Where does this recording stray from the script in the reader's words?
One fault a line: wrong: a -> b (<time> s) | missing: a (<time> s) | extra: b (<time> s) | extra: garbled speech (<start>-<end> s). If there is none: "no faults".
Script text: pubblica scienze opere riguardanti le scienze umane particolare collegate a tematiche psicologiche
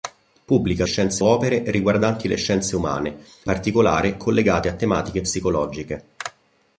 no faults